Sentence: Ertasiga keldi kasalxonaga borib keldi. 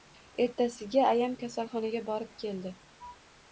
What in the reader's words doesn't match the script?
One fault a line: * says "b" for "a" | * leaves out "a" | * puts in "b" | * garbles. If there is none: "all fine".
* says "ayam" for "keldi"